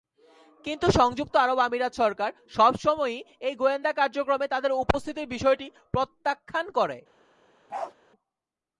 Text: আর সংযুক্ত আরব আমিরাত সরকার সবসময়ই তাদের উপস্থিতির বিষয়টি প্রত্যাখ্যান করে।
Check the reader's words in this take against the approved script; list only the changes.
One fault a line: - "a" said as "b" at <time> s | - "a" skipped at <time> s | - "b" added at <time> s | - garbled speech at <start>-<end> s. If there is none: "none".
- "আর" said as "কিন্তু" at 0.7 s
- "এই গোয়েন্দা কার্যক্রমে" added at 3.4 s